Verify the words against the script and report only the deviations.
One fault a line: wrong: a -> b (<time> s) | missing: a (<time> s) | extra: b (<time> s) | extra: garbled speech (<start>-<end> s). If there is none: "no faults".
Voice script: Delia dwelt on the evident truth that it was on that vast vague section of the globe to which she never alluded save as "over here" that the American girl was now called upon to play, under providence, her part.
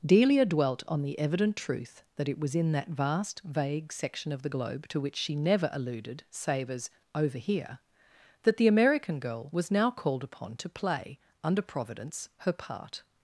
wrong: on -> in (2.5 s)